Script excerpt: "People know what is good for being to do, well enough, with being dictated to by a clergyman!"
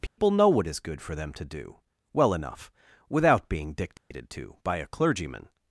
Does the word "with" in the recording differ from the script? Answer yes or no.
yes